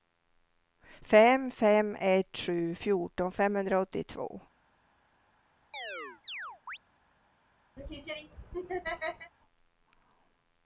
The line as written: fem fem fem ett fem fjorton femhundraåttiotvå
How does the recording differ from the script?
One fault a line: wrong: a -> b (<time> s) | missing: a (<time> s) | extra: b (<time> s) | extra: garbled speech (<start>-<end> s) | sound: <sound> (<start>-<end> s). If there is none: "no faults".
missing: fem (1.9 s)
wrong: fem -> sju (2.4 s)
sound: chirp (5.7-6.8 s)
sound: laugh (7.8-9.3 s)